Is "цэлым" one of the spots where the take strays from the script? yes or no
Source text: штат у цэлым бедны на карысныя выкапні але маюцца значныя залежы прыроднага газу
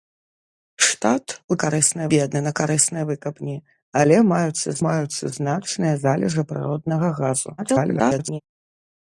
yes